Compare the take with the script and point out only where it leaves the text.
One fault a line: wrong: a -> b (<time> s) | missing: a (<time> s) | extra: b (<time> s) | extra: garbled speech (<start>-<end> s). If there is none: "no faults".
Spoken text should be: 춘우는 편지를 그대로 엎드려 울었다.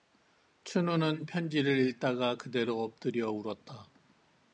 extra: 읽다가 (1.9 s)